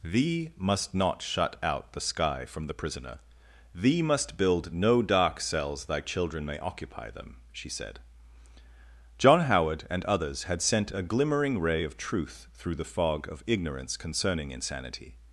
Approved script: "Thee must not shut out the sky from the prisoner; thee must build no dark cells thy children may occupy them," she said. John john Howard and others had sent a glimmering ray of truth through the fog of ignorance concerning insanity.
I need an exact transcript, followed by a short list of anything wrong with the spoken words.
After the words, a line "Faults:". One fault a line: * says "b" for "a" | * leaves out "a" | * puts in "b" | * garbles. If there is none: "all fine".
"Thee must not shut out the sky from the prisoner; thee must build no dark cells thy children may occupy them," she said. John Howard and others had sent a glimmering ray of truth through the fog of ignorance concerning insanity.
Faults:
* leaves out "john"